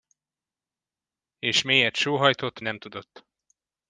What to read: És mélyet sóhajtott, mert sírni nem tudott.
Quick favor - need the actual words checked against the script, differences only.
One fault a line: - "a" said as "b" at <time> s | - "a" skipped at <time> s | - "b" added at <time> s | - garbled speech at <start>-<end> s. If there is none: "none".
- "mert sírni" skipped at 2.6 s